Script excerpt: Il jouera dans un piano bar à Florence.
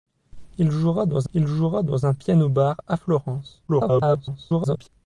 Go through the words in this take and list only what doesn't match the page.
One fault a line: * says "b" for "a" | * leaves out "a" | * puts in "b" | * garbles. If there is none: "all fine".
* puts in "il jouera dans"
* garbles